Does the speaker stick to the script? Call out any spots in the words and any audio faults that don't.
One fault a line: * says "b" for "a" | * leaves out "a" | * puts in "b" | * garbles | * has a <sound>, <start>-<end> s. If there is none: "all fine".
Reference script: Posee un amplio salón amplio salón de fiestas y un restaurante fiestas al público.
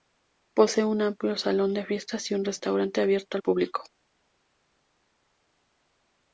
* leaves out "amplio salón"
* says "abierto" for "fiestas"